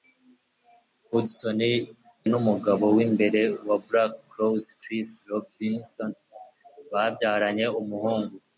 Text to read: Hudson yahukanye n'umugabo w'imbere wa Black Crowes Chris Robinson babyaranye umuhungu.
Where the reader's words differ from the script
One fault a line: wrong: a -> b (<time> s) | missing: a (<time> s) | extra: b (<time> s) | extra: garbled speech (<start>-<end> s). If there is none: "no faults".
missing: yahukanye (1.6 s)